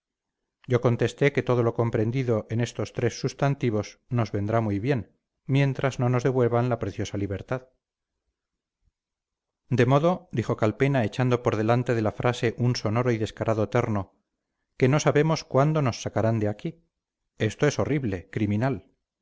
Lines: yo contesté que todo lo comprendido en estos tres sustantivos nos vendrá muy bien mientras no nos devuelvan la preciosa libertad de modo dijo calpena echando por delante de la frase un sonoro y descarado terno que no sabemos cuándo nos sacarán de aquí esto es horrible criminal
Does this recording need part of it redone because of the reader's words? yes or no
no